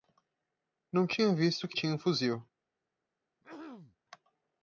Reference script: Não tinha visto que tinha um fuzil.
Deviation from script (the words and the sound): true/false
true